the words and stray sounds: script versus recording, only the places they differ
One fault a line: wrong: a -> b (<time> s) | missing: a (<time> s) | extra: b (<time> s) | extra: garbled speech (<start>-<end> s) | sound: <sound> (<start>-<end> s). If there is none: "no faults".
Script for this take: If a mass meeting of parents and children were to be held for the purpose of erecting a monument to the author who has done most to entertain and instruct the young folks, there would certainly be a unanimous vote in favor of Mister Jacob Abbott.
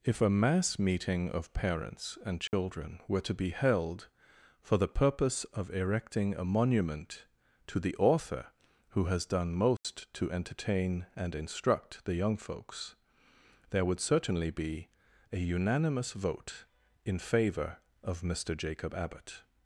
sound: dropout (2.5-2.5 s)
sound: dropout (9.8-9.8 s)